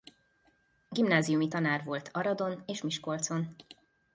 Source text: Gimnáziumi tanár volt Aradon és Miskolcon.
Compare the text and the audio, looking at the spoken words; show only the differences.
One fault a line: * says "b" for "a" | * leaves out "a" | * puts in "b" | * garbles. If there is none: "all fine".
all fine